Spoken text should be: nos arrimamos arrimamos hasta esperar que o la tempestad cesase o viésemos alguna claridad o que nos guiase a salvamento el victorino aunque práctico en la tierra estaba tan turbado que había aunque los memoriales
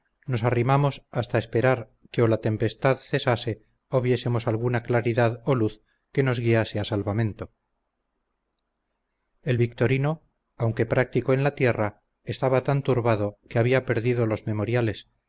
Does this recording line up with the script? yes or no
no